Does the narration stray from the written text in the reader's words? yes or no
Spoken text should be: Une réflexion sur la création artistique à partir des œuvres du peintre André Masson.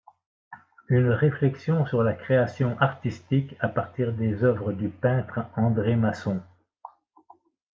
no